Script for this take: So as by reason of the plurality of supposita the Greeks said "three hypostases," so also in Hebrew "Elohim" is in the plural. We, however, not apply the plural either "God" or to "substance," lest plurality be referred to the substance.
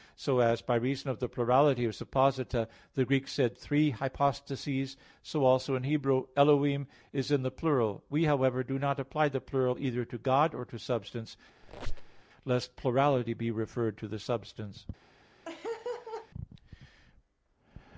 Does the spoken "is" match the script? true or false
true